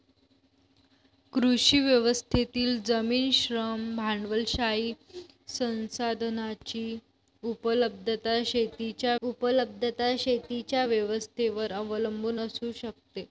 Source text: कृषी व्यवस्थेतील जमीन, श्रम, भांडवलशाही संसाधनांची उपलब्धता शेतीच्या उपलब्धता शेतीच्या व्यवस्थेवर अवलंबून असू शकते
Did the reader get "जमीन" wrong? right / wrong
right